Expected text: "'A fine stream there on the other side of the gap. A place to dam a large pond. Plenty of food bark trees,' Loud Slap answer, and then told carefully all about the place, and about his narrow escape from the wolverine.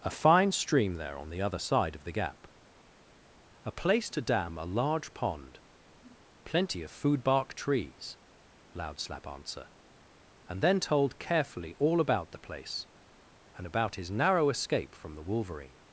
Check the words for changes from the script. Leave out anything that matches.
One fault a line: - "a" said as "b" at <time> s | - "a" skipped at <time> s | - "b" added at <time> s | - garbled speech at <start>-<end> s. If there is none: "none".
none